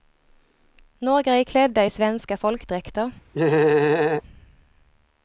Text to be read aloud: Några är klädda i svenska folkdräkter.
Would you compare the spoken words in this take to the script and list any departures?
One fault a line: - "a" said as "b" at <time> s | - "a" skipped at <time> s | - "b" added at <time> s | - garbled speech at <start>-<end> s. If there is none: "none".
none